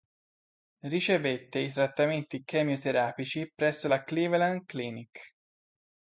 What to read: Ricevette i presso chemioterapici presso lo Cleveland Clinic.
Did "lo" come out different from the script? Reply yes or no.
yes